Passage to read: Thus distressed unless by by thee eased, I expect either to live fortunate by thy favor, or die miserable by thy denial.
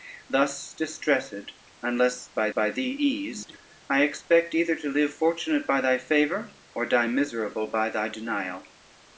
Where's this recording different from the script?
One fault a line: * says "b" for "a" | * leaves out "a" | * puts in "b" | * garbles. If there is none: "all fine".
all fine